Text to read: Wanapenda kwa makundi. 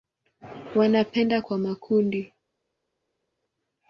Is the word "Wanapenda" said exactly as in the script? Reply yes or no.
yes